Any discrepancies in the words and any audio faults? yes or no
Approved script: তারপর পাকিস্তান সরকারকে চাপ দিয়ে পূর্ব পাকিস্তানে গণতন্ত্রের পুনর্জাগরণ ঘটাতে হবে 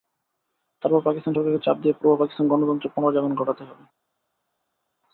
no